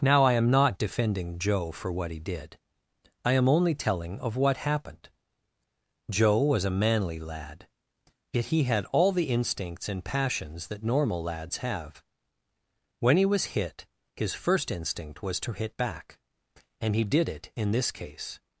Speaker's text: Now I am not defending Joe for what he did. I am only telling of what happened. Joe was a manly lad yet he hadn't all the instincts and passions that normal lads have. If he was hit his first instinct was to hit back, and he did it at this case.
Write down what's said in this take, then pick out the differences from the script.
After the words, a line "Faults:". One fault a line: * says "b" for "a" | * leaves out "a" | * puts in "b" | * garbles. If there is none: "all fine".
Now I am not defending Joe for what he did. I am only telling of what happened. Joe was a manly lad yet he had all the instincts and passions that normal lads have. When he was hit his first instinct was to hit back, and he did it in this case.
Faults:
* says "had" for "hadn't"
* says "When" for "If"
* says "in" for "at"